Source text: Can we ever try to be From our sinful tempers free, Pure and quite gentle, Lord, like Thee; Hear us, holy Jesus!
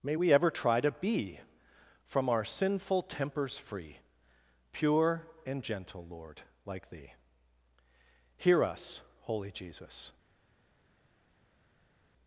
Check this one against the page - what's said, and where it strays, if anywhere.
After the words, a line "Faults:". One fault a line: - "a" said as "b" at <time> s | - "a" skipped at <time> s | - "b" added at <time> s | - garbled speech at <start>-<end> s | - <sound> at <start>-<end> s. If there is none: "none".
May we ever try to be From our sinful tempers free, Pure and gentle, Lord, like Thee; Hear us, holy Jesus!
Faults:
- "Can" said as "May" at 0.0 s
- "quite" skipped at 5.6 s